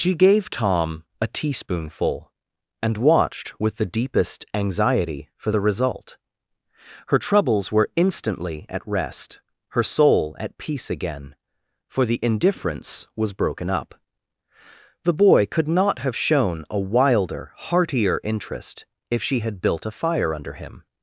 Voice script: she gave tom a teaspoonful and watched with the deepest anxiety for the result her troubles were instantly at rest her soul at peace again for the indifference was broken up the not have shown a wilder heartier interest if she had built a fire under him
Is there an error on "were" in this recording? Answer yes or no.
no